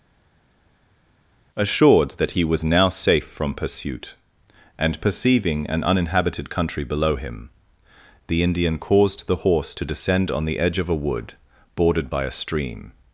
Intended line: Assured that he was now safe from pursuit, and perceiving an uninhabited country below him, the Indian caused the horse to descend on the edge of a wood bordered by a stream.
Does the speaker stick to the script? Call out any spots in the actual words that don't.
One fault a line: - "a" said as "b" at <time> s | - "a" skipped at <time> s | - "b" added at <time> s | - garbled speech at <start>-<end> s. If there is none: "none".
none